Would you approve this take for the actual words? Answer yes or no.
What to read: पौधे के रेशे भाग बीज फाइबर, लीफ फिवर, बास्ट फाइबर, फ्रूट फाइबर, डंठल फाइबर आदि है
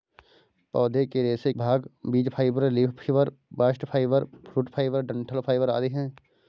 yes